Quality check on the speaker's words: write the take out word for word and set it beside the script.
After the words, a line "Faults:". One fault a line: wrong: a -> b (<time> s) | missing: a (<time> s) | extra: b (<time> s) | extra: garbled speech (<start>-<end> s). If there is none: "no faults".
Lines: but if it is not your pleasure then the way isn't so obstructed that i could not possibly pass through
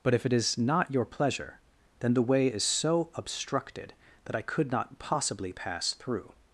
but if it is not your pleasure then the way is so obstructed that i could not possibly pass through
Faults:
wrong: isn't -> is (2.5 s)